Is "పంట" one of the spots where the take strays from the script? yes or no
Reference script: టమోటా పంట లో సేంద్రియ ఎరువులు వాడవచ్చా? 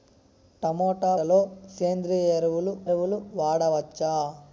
yes